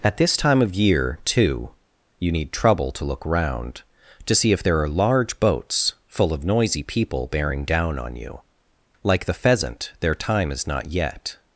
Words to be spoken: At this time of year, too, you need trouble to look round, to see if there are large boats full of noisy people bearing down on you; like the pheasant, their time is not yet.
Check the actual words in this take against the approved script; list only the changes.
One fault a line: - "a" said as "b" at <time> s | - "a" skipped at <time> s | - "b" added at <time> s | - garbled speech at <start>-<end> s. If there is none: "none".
none